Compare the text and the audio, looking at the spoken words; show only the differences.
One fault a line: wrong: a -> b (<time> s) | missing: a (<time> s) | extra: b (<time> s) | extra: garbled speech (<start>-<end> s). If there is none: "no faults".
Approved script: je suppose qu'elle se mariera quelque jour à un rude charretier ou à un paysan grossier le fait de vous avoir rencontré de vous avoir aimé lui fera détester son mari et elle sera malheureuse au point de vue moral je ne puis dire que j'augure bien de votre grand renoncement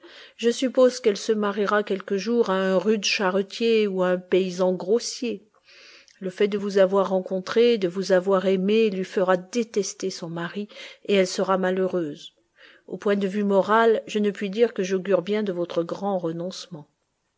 no faults